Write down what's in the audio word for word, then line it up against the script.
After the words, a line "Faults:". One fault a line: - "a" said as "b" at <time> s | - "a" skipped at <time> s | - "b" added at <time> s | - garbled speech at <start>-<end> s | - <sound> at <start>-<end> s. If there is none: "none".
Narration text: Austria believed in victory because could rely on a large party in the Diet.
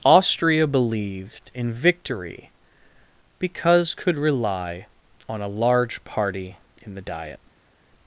Austria believed in victory because could rely on a large party in the Diet.
Faults:
none